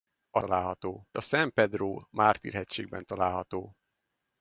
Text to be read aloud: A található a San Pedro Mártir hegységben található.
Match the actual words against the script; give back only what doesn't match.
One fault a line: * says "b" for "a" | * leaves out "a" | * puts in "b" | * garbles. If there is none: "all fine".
all fine